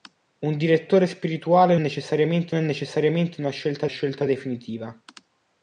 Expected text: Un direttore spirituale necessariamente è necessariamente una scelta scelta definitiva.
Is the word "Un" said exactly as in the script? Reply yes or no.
yes